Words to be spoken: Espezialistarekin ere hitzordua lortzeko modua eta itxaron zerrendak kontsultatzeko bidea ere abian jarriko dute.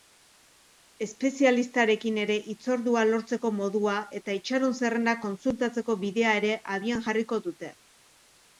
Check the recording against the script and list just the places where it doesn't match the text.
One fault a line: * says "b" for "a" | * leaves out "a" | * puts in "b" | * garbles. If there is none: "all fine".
all fine